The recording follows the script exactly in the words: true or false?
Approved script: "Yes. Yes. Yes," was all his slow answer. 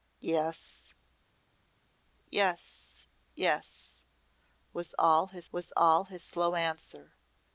false